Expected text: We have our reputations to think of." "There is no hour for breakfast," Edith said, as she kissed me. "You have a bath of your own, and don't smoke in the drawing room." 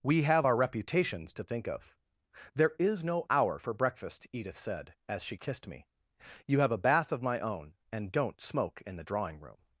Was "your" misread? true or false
true